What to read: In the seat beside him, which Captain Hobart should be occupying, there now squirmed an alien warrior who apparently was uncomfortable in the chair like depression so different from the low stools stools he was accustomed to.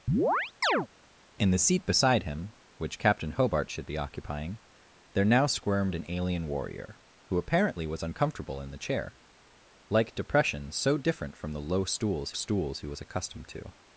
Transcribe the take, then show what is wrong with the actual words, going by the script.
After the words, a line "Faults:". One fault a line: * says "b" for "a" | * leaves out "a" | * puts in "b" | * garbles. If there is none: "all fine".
In the seat beside him, which Captain Hobart should be occupying, there now squirmed an alien warrior who apparently was uncomfortable in the chair like depression so different from the low stools stools he was accustomed to.
Faults:
all fine